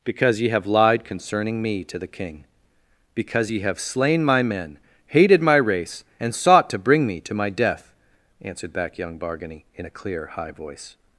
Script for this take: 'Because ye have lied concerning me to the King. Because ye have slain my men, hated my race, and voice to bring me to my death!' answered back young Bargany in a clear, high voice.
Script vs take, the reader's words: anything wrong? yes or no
yes